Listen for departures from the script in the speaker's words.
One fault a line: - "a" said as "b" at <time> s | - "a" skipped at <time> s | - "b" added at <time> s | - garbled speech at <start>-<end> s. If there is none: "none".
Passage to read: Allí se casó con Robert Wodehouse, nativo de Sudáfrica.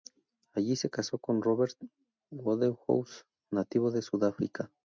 none